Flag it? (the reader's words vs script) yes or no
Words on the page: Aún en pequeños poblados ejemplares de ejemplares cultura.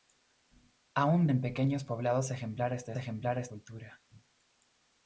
no